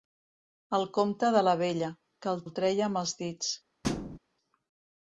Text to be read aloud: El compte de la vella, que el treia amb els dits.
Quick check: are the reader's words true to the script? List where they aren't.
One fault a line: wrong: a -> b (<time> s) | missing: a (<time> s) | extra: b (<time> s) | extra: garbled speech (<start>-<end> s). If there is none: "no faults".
extra: el (2.4 s)